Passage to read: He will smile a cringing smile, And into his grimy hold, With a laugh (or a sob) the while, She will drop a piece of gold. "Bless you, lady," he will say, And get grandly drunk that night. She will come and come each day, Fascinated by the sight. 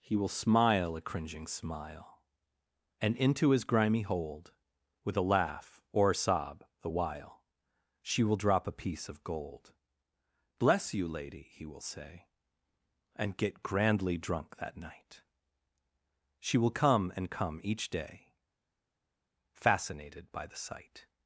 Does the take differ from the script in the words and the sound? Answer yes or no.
no